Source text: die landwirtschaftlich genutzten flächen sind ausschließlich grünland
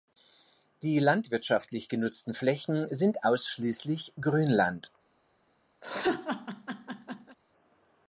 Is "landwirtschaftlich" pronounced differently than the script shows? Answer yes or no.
no